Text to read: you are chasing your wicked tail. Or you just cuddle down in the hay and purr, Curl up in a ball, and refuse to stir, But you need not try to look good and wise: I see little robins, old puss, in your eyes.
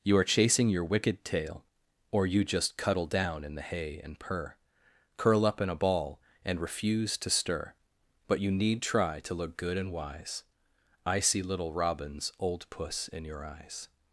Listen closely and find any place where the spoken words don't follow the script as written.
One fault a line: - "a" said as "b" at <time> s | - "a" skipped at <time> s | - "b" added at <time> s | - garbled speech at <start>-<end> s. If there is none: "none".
- "not" skipped at 8.8 s